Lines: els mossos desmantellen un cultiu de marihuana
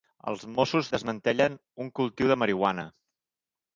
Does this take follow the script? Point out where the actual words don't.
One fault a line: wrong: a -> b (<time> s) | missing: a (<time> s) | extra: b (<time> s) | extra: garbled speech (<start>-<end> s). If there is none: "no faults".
no faults